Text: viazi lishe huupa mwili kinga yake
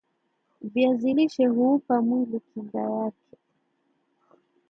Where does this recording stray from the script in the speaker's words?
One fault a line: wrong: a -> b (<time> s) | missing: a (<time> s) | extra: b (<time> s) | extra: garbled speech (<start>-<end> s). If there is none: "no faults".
no faults